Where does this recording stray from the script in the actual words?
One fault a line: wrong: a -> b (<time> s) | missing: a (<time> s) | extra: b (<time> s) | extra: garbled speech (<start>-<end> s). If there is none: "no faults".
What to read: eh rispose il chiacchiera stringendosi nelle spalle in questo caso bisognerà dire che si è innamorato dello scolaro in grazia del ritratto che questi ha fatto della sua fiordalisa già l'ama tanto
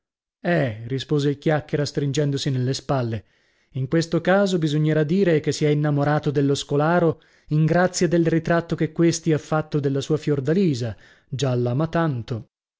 no faults